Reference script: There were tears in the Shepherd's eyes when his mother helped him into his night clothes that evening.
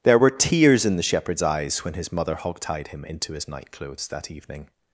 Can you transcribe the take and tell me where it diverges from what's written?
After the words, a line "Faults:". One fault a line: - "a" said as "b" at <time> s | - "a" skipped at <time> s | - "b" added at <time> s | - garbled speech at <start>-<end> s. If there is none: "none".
There were tears in the Shepherd's eyes when his mother hogtied him into his night clothes that evening.
Faults:
- "helped" said as "hogtied" at 2.4 s